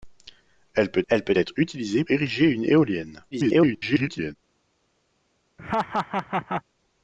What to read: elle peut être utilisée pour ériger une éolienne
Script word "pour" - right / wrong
wrong